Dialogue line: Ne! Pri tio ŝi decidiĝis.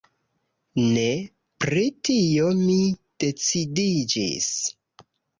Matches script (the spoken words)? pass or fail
fail